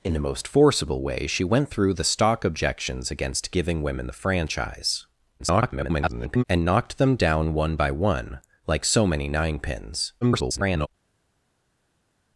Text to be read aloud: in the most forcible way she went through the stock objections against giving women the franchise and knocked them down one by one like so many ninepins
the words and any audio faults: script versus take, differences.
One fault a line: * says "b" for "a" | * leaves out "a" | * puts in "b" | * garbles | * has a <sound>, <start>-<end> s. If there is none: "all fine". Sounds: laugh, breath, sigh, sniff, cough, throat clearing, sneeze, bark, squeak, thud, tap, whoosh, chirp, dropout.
* garbles
* garbles